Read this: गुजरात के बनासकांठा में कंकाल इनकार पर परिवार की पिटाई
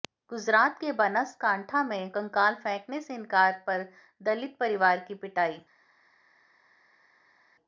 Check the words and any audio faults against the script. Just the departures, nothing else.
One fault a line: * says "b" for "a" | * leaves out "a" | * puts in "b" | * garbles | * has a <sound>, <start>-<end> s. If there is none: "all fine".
* puts in "फेंकने से"
* puts in "दलित"